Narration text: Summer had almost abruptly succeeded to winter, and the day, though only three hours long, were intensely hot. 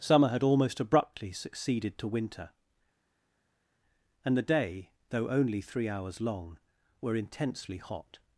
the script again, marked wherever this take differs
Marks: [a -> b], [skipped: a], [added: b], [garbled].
Summer had almost abruptly succeeded to winter, and the day, though only three hours long, were intensely hot.